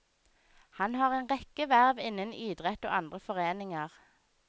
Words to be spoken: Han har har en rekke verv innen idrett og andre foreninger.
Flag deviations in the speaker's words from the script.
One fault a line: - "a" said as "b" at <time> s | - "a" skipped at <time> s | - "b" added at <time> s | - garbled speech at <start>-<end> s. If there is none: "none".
- "har" skipped at 1.1 s